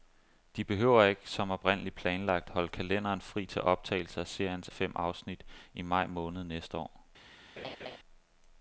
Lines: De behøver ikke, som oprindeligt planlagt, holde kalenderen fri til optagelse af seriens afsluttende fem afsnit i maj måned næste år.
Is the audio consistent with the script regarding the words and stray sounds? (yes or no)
no